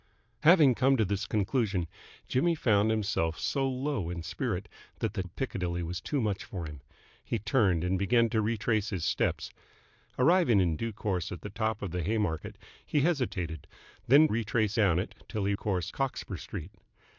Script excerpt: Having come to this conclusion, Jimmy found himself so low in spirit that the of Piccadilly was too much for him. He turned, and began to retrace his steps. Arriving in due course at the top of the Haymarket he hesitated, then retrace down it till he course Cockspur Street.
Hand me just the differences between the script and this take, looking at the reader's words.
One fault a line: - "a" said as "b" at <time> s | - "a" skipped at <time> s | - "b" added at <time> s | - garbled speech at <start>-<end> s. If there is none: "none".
none